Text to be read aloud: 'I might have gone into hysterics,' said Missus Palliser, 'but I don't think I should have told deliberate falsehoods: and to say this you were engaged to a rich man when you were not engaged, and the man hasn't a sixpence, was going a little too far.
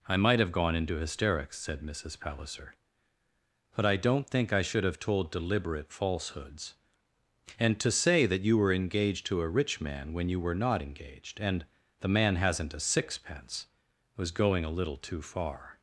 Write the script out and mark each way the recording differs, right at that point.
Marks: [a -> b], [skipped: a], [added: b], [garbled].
'I might have gone into hysterics,' said Missus Palliser, 'but I don't think I should have told deliberate falsehoods: and to say [this -> that] you were engaged to a rich man when you were not engaged, and the man hasn't a sixpence, was going a little too far.